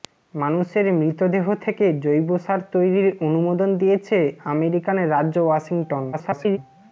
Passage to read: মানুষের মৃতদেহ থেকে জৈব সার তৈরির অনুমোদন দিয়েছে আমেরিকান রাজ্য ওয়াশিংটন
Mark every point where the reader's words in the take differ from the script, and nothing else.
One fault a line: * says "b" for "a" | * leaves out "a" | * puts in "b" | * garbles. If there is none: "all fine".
* garbles